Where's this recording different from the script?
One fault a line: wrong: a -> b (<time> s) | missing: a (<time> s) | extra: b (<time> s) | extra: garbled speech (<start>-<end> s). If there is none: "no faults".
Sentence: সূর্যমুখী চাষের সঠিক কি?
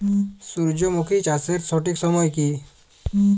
extra: সময় (2.0 s)